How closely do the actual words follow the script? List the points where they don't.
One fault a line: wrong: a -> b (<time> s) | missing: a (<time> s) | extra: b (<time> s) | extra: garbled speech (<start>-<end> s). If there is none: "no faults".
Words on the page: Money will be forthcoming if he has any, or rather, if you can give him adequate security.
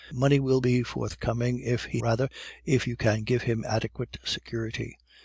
missing: has any or (2.0 s)